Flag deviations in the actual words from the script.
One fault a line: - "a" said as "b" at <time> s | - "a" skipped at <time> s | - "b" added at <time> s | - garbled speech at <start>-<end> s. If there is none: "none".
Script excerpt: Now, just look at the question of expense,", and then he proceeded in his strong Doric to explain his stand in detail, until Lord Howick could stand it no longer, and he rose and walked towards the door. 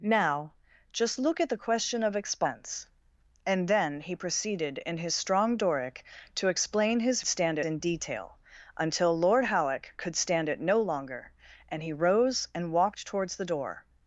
none